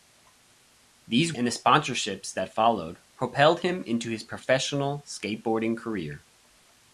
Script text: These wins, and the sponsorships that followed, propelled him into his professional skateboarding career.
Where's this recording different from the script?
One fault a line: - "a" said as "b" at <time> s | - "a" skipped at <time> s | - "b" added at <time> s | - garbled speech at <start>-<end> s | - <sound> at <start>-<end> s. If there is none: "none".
- "wins" skipped at 1.3 s